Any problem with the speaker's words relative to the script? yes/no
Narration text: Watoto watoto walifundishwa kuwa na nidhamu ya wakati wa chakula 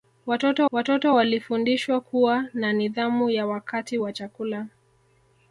no